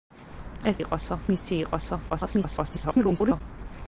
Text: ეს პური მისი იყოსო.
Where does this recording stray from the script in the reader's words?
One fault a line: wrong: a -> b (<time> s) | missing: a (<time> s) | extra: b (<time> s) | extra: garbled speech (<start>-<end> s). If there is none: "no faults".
wrong: პური -> იყოსო (0.8 s)
extra: garbled speech (2.1-3.4 s)